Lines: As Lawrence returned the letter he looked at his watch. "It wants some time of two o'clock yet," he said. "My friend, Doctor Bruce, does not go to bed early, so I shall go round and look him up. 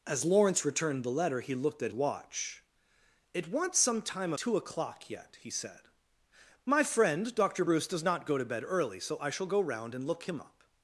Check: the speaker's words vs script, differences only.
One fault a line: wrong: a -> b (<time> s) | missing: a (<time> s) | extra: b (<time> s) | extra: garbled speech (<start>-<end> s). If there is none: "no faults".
missing: his (1.9 s)
missing: of (4.3 s)